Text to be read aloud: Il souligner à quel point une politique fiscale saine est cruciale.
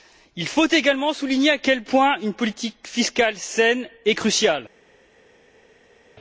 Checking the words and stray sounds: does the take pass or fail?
fail